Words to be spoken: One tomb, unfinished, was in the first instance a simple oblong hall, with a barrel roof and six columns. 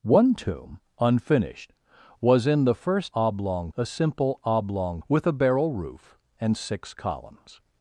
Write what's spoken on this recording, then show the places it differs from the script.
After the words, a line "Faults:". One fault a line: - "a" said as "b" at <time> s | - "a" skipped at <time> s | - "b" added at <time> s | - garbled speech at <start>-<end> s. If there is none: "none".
One tomb, unfinished, was in the first oblong a simple oblong with a barrel roof and six columns.
Faults:
- "instance" said as "oblong" at 3.1 s
- "hall" skipped at 5.0 s